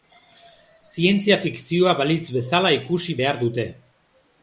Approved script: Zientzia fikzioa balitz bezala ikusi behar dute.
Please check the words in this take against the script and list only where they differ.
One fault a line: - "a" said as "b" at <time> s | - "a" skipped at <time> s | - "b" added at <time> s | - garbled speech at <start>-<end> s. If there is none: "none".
none